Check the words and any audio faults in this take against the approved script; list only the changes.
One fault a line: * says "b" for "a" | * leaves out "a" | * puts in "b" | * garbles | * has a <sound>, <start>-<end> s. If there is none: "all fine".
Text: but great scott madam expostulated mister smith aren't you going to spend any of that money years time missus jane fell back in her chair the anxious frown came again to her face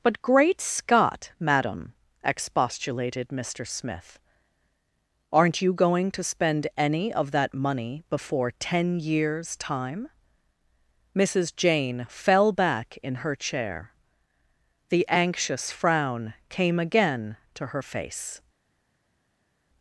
* puts in "before ten"